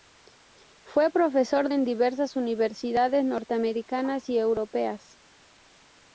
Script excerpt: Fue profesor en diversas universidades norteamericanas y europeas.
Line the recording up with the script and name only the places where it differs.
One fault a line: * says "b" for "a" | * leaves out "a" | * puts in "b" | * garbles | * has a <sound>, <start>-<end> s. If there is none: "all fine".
all fine